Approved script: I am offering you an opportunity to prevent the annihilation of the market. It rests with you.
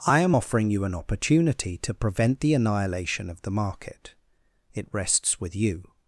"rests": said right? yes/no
yes